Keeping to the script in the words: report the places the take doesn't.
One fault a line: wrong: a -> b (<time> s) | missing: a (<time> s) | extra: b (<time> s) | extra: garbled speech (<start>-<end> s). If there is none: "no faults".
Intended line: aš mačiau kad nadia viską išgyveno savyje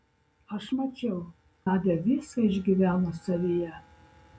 missing: kad (1.2 s)